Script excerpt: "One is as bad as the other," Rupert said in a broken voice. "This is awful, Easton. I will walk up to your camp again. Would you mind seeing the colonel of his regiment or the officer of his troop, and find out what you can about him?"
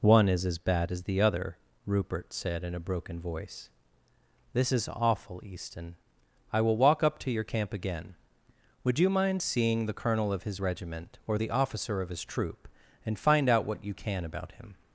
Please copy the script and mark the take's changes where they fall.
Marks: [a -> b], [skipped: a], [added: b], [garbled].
"One is as bad as the other," Rupert said in a broken voice. "This is awful, Easton. I will walk up to your camp again. Would you mind seeing the colonel of his regiment or the officer of his troop, and find out what you can about him?"